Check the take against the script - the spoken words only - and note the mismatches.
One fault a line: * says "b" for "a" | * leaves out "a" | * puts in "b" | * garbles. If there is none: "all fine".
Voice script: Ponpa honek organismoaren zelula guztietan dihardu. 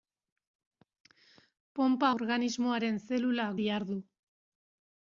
* leaves out "honek"
* leaves out "guztietan"